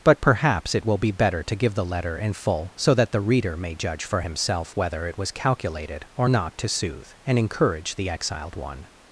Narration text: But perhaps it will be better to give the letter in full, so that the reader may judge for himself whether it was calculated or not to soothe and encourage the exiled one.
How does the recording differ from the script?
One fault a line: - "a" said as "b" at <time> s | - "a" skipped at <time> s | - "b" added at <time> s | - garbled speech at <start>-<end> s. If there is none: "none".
none